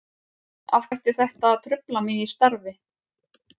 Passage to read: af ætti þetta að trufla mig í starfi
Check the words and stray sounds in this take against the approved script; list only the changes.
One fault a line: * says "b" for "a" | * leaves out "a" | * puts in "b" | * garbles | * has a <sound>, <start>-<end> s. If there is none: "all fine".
all fine